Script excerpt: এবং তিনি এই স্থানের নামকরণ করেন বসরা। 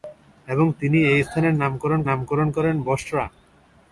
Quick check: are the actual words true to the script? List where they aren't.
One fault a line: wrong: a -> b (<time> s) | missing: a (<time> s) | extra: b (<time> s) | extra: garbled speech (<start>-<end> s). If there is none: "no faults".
extra: নামকরণ (2.1 s)